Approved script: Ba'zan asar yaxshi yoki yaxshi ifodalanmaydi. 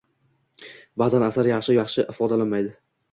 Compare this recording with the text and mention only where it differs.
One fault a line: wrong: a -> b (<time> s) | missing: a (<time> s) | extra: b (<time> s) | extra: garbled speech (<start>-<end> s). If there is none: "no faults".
missing: yoki (1.8 s)